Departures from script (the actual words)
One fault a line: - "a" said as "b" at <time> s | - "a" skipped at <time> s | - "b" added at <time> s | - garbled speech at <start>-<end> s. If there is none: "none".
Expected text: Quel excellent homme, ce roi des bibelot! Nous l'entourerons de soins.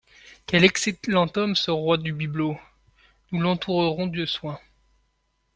- "des" said as "du" at 2.0 s